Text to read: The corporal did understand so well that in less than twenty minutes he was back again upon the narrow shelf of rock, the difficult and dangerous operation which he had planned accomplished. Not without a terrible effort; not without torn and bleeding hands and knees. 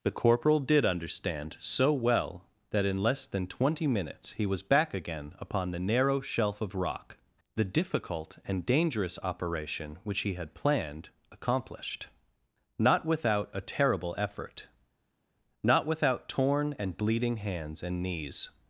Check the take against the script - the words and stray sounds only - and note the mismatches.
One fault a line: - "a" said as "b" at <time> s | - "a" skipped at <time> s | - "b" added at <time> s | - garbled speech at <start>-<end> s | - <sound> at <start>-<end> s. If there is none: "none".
none